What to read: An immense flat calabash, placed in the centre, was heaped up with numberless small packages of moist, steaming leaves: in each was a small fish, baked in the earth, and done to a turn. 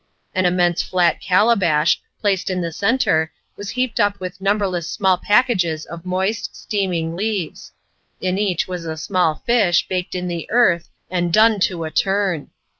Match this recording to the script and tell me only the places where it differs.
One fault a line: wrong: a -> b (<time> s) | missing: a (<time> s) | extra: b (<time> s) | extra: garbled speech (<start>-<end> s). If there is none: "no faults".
no faults